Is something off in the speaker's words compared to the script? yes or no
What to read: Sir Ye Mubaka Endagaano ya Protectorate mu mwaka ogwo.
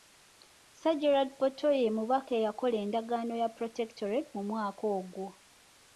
yes